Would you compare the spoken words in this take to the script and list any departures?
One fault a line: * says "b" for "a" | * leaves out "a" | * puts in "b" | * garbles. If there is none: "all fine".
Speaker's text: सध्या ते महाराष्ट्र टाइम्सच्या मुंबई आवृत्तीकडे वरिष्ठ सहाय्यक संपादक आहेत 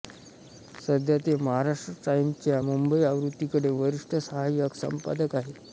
all fine